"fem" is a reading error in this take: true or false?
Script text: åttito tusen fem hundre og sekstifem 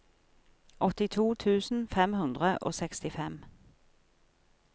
false